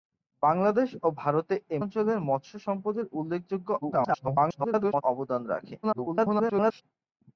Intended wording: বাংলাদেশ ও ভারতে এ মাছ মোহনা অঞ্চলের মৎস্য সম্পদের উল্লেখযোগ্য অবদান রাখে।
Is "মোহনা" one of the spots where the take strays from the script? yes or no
yes